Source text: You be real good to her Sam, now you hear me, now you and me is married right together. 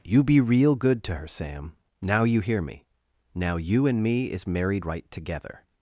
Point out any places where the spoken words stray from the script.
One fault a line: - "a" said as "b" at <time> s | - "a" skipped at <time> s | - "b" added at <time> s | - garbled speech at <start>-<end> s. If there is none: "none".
none